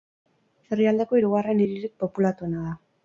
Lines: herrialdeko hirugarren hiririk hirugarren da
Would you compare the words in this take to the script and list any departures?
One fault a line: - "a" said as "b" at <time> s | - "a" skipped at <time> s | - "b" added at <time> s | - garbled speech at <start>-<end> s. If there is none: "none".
- "hirugarren" said as "populatuena" at 2.0 s